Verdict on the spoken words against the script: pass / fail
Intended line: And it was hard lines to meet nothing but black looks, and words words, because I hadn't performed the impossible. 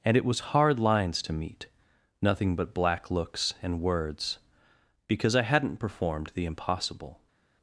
fail